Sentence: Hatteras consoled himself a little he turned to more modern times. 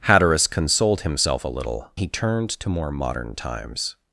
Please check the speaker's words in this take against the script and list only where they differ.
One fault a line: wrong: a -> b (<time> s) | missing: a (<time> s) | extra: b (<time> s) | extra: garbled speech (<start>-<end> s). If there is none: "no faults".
no faults